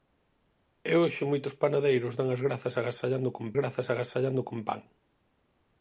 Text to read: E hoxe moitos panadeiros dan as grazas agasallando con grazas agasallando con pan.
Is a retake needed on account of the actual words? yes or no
no